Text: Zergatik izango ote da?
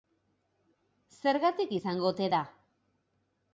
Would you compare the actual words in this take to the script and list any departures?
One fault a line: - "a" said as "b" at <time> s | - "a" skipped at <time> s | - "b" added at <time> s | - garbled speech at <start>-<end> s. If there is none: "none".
none